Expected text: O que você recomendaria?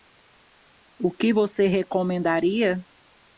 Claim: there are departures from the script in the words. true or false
false